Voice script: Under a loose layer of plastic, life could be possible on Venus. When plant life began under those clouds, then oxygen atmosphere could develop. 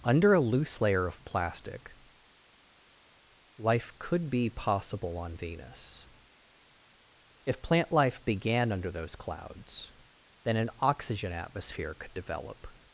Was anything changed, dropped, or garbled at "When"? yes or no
yes